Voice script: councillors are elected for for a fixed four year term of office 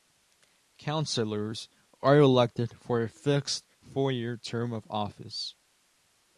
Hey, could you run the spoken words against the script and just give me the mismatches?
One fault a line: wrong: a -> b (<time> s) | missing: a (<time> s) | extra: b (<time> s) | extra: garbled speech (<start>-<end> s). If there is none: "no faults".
missing: for (3.0 s)